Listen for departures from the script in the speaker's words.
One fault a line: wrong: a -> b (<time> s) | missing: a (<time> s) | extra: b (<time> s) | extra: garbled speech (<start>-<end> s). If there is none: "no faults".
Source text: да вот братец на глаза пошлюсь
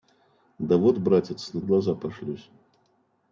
no faults